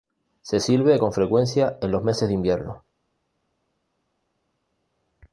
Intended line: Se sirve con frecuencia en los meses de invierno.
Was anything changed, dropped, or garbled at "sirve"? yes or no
no